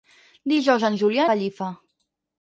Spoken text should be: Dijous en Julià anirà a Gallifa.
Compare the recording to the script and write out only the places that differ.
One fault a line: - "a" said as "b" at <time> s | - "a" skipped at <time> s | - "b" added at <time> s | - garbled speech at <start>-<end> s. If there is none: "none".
- "anirà" skipped at 1.3 s